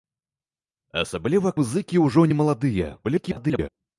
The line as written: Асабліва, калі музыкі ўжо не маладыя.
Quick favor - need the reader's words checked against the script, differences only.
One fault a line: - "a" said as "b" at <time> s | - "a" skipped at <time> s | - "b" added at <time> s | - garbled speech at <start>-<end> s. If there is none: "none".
- "калі" skipped at 1.5 s
- garbled speech at 3.0-3.7 s